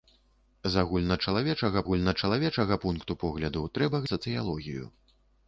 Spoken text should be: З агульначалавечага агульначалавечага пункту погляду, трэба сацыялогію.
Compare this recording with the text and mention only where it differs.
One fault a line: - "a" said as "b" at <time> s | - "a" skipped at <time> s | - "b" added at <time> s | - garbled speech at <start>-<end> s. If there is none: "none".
none